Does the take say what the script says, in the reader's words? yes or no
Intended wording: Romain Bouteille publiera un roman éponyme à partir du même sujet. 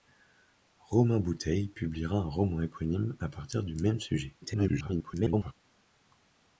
no